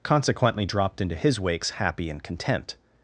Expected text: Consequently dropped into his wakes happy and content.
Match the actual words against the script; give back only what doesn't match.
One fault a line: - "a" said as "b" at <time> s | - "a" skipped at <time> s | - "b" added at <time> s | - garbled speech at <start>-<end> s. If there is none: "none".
none